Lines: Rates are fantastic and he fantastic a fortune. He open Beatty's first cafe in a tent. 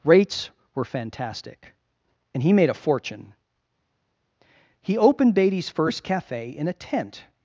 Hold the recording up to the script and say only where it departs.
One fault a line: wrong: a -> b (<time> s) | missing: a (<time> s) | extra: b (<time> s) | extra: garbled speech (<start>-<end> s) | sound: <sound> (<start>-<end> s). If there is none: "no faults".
wrong: are -> were (0.7 s)
wrong: fantastic -> made (2.5 s)
wrong: open -> opened (5.0 s)